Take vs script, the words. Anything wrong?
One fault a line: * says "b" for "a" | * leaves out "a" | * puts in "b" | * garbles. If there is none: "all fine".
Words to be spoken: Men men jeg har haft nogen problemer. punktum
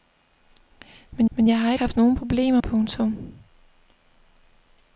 all fine